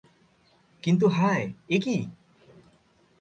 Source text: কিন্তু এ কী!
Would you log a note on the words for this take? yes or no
yes